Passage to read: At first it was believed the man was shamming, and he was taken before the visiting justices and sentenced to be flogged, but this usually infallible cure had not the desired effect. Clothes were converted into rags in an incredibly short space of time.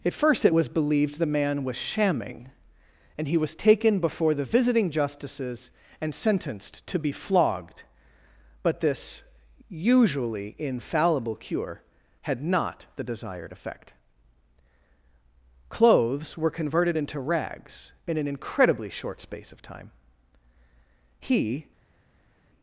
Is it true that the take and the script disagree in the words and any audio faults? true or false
true